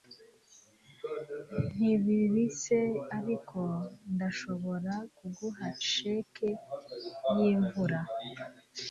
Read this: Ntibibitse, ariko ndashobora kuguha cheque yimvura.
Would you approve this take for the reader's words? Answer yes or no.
yes